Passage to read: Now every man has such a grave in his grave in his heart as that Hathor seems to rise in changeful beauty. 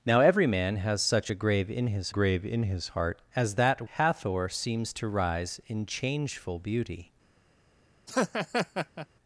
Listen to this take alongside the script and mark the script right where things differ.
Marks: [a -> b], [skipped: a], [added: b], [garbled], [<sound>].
Now every man has such a grave in his grave in his heart as that Hathor seems to rise in changeful beauty. [laugh]